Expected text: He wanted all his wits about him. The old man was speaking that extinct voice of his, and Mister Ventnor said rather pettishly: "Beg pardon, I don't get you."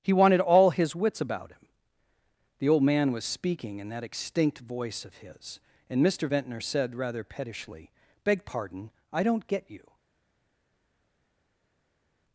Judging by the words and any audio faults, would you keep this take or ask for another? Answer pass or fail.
fail